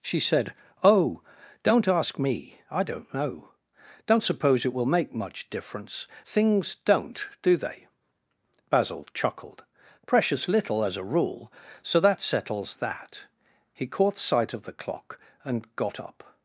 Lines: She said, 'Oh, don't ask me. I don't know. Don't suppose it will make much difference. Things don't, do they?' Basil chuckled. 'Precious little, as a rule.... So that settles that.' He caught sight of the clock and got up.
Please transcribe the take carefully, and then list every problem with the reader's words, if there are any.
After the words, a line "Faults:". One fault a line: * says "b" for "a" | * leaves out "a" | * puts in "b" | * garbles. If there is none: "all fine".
She said, 'Oh, don't ask me. I don't know. Don't suppose it will make much difference. Things don't, do they?' Basil chuckled. 'Precious little, as a rule.... So that settles that.' He caught sight of the clock and got up.
Faults:
all fine